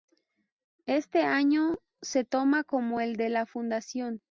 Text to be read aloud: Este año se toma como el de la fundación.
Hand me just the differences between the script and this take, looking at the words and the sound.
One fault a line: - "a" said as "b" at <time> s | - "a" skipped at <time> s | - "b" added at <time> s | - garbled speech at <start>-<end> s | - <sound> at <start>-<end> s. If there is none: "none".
none